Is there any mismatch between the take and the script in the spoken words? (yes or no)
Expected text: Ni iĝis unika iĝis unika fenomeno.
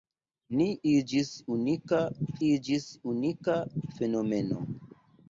no